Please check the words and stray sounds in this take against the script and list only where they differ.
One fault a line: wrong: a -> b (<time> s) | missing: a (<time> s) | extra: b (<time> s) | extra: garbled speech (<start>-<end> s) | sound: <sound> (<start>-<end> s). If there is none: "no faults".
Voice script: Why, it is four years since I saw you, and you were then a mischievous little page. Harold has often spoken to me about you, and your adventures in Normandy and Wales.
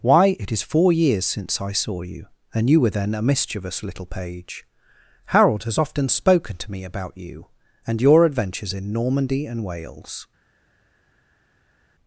no faults